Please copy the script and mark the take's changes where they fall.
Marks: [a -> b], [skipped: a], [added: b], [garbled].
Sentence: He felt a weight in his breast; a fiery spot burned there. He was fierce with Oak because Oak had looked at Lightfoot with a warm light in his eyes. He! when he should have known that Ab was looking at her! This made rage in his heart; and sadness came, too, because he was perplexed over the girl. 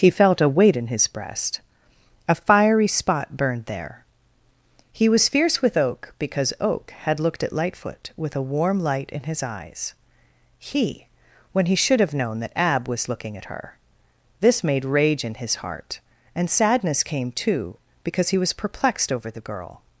He felt a weight in his breast; a fiery spot burned there. He was fierce with Oak because Oak had looked at Lightfoot with a warm light in his eyes. He! when he should have known that Ab was looking at her! This made rage in his heart; and sadness came, too, because he was perplexed over the girl.